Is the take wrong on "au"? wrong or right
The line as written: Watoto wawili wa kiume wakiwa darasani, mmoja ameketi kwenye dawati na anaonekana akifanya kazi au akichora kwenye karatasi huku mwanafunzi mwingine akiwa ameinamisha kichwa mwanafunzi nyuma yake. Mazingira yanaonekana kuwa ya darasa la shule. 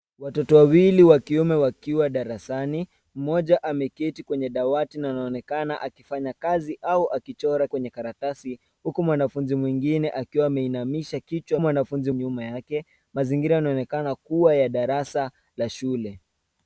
right